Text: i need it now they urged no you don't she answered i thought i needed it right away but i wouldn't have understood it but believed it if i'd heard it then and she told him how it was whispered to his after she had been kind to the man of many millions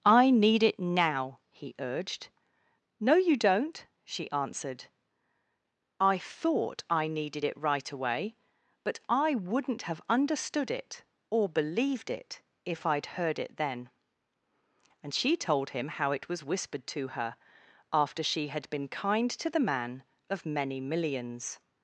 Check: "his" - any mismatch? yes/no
yes